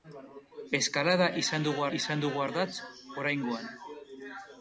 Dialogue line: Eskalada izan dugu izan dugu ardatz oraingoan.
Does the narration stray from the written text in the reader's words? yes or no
no